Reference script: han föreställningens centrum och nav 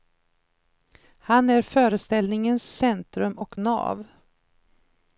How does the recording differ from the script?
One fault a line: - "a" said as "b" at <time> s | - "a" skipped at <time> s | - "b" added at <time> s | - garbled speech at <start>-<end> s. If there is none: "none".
- "är" added at 1.5 s